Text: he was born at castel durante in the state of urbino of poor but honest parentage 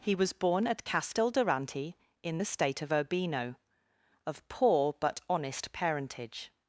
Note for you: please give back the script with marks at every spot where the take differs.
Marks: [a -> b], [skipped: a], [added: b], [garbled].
he was born at castel durante in the state of urbino of poor but honest parentage